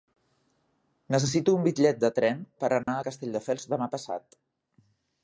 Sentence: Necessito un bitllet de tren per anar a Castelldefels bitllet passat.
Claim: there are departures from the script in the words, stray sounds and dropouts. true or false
true